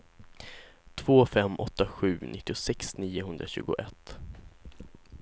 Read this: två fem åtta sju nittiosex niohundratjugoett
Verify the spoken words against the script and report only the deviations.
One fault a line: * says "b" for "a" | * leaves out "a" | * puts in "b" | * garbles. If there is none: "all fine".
all fine